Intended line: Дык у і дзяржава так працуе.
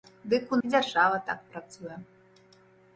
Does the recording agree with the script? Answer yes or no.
yes